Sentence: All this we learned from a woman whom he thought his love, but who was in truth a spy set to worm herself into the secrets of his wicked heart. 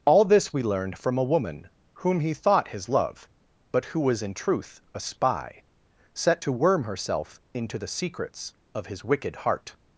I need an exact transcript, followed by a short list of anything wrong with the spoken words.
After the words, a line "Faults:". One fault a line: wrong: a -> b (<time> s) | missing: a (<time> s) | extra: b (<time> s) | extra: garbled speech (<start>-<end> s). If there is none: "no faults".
All this we learned from a woman whom he thought his love, but who was in truth a spy set to worm herself into the secrets of his wicked heart.
Faults:
no faults